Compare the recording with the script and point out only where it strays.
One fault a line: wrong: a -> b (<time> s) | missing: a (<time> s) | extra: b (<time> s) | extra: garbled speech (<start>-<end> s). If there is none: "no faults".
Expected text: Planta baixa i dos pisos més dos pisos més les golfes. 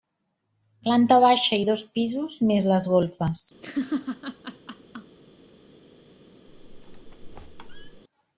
missing: dos pisos més (2.7 s)